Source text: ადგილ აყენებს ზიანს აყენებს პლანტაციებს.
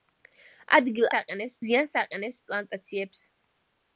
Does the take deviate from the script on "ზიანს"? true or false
false